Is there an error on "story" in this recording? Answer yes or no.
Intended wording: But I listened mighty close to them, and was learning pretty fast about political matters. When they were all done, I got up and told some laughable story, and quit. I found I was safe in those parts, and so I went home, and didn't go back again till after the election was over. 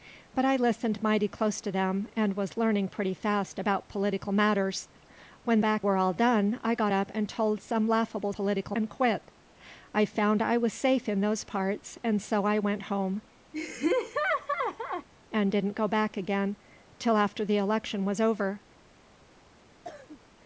yes